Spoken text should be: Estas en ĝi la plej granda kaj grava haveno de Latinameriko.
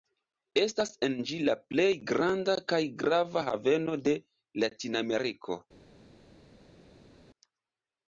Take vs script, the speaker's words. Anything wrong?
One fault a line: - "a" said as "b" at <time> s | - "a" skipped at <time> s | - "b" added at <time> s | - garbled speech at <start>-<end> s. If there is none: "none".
none